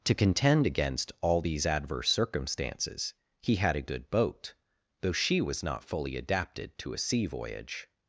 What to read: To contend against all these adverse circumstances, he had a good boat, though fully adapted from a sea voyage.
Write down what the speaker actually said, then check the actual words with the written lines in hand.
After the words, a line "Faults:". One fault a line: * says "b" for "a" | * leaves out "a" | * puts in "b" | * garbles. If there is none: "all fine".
To contend against all these adverse circumstances, he had a good boat, though she was not fully adapted to a sea voyage.
Faults:
* puts in "she was not"
* says "to" for "from"